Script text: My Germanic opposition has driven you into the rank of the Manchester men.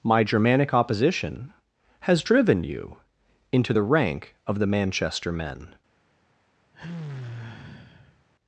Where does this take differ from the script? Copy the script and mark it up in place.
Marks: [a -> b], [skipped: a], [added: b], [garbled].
My Germanic opposition has driven you into the rank of the Manchester men.